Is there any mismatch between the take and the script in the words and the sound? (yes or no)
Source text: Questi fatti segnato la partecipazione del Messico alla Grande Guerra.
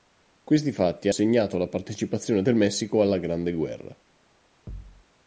yes